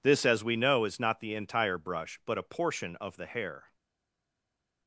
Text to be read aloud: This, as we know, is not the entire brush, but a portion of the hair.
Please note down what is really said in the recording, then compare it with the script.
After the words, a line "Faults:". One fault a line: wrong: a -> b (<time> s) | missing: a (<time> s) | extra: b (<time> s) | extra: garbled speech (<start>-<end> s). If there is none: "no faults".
This, as we know, is not the entire brush, but a portion of the hair.
Faults:
no faults